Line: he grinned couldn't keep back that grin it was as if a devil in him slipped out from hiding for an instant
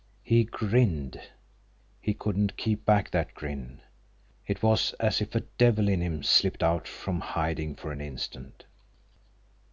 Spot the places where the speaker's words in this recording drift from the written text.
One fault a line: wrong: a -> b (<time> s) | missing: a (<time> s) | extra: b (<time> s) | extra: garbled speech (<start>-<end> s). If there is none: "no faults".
extra: he (2.0 s)